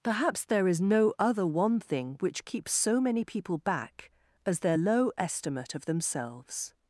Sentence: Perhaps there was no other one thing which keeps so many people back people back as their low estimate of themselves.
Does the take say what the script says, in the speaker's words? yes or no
no